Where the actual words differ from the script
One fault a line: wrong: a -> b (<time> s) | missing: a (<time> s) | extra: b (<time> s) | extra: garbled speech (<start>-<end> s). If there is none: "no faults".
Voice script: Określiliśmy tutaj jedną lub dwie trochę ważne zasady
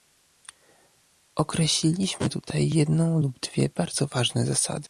wrong: trochę -> bardzo (3.7 s)